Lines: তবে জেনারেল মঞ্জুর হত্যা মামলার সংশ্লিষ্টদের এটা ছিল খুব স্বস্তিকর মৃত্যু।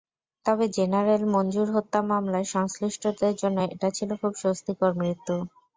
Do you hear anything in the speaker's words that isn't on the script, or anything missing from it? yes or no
yes